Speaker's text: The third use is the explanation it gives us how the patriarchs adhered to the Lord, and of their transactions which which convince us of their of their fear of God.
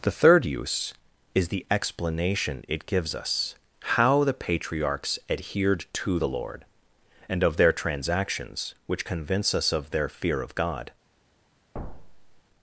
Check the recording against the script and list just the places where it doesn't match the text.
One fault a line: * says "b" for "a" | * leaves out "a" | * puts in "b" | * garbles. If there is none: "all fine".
* leaves out "which"
* leaves out "of their"